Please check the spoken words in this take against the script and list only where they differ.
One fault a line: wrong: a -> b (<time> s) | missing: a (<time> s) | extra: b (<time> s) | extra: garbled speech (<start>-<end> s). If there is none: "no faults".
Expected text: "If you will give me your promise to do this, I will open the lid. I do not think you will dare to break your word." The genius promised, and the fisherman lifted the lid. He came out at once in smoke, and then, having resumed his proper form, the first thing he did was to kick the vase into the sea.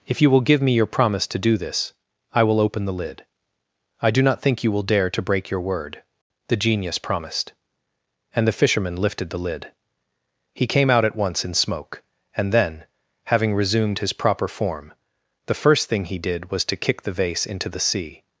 no faults